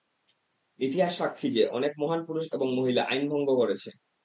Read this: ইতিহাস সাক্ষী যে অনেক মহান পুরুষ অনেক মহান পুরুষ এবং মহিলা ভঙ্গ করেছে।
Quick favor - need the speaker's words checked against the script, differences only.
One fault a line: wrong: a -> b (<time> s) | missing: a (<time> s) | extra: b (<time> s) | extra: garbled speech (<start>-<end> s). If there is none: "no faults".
missing: অনেক মহান পুরুষ (2.5 s)
extra: আইন (3.0 s)